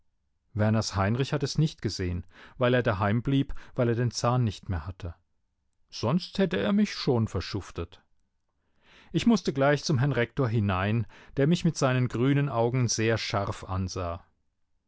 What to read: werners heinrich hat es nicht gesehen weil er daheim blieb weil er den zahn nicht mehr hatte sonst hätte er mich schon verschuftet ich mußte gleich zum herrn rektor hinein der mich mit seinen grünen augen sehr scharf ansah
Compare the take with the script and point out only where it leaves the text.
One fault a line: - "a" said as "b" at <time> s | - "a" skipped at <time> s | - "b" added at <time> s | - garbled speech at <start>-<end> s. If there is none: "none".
none